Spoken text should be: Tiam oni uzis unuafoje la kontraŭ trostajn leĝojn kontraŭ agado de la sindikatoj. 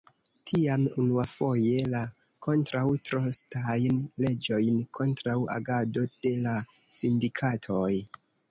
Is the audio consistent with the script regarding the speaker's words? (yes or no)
no